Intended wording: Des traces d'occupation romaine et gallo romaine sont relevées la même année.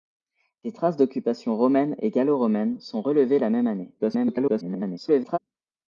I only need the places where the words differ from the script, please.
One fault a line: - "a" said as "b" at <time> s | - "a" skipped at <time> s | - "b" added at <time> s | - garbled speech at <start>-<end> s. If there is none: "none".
- garbled speech at 4.0-5.4 s